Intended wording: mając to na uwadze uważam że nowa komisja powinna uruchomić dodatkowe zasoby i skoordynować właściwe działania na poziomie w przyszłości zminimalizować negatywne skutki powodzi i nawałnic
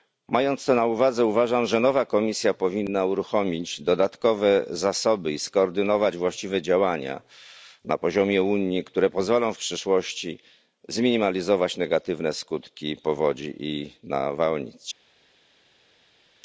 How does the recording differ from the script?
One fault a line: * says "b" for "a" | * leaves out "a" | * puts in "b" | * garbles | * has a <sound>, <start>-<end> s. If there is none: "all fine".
* puts in "unii które pozwolą"